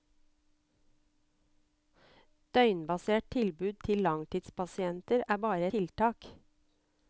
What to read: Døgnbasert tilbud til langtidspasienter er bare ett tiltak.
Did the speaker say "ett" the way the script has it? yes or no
no